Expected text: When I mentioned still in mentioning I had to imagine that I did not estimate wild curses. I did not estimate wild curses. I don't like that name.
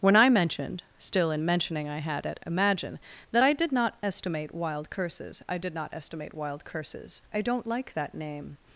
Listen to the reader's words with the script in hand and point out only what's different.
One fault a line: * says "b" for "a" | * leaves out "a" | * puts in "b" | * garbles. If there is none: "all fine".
* says "at" for "to"